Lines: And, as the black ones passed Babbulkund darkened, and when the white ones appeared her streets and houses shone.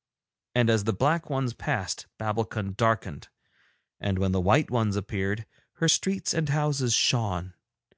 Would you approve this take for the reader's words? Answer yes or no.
yes